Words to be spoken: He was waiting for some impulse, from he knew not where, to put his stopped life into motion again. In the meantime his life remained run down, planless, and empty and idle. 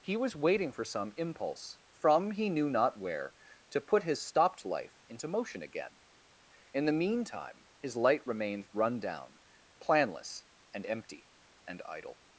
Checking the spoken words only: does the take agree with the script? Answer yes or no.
no